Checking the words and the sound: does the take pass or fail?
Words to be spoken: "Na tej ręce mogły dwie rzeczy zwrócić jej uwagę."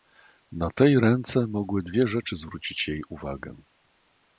pass